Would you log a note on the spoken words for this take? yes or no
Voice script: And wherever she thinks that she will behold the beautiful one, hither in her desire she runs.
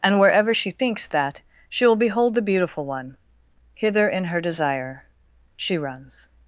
no